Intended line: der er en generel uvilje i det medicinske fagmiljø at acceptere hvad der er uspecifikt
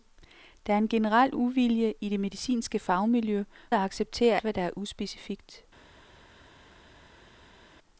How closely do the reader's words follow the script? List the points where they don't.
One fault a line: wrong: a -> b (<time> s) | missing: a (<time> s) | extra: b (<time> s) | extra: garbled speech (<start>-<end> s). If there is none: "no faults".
no faults